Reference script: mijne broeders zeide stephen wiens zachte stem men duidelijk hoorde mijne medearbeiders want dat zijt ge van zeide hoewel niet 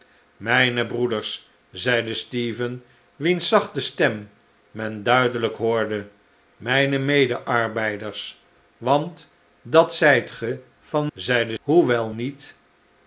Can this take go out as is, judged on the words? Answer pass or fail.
pass